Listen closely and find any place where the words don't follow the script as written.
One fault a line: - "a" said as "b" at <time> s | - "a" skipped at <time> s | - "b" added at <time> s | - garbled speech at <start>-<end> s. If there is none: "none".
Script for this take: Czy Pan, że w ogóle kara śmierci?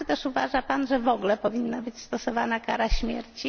- "też uważa" added at 0.0 s
- "powinna być stosowana" added at 1.4 s